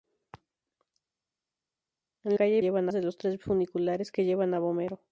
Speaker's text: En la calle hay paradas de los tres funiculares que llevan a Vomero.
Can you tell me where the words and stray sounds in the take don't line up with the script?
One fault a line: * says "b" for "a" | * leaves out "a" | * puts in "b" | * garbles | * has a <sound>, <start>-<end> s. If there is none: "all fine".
* leaves out "la"
* says "llevan" for "paradas"